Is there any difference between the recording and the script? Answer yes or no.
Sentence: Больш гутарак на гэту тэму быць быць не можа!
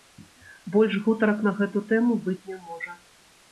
yes